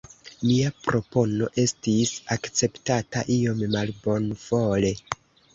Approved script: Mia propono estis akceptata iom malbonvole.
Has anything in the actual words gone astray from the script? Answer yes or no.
no